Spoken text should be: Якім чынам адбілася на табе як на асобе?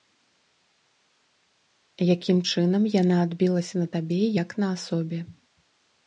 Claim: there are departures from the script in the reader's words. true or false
true